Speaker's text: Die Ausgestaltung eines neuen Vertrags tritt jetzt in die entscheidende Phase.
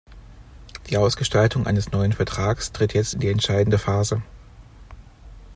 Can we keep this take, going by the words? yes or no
yes